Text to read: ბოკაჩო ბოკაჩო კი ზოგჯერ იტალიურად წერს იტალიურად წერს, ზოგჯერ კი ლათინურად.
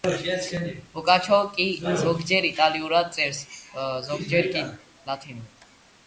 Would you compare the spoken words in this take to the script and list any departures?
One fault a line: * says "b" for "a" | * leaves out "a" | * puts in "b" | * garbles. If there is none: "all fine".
* leaves out "ბოკაჩო"
* leaves out "იტალიურად წერს"